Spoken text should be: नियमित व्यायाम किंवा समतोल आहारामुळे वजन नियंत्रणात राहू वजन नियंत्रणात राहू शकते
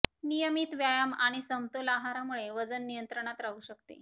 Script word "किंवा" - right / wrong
wrong